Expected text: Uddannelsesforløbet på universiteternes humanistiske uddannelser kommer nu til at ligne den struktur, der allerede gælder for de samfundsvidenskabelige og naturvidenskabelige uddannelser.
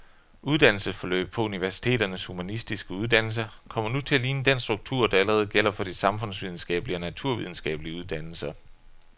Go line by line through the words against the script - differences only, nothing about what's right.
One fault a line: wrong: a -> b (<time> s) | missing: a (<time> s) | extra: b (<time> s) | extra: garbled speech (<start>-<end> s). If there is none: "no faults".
no faults